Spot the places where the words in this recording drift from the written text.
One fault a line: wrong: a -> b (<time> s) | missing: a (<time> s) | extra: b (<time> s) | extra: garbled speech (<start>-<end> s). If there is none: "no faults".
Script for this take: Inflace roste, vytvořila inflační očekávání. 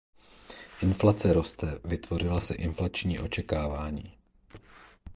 extra: se (2.4 s)